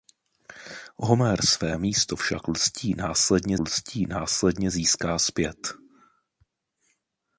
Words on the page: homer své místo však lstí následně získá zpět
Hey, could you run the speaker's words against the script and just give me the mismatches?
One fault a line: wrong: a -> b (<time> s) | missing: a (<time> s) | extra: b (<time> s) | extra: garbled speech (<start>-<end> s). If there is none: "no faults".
extra: lstí následně (3.6 s)